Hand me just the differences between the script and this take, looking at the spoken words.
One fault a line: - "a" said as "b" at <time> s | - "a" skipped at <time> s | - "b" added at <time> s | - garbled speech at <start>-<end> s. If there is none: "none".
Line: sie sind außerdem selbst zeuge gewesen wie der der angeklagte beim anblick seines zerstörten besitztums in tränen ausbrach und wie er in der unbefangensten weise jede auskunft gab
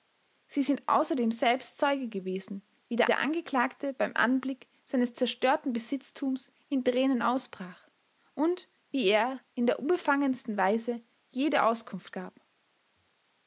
none